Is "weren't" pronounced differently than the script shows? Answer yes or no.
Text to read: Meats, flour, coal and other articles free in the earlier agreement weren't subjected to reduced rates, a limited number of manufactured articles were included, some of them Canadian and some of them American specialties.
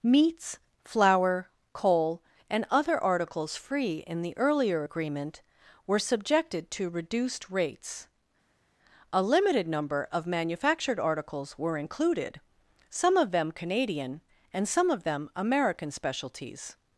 yes